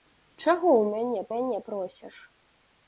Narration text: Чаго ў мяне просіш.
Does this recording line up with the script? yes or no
no